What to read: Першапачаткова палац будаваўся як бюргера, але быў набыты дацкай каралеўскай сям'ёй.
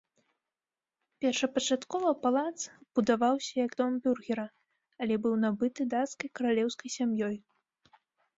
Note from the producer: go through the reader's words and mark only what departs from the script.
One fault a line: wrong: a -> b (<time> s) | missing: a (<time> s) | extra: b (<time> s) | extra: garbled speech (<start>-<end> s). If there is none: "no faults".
extra: дом (3.8 s)